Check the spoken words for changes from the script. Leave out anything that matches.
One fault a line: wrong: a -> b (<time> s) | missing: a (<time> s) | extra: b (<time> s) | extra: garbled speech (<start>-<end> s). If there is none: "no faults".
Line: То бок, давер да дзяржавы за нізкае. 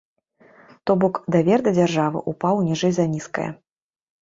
extra: ўпаў ніжэй (2.3 s)